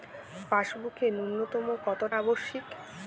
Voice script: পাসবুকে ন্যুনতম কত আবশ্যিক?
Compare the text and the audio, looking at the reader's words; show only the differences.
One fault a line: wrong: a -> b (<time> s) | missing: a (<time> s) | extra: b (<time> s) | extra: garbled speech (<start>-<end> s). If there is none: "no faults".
no faults